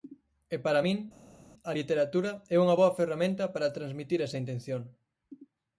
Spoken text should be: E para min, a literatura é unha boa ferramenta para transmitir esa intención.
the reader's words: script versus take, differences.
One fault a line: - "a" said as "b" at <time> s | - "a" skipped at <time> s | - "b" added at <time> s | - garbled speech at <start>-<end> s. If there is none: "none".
none